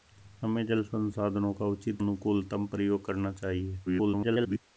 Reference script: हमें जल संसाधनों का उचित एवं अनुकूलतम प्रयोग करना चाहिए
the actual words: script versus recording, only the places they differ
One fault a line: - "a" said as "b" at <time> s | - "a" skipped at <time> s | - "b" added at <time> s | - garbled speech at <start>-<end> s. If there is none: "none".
- "एवं" skipped at 2.0 s
- garbled speech at 3.9-4.6 s